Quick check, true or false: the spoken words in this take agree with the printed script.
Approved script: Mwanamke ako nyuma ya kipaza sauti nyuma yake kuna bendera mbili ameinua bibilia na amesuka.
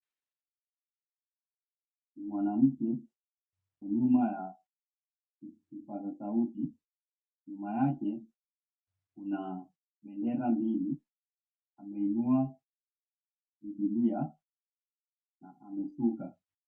false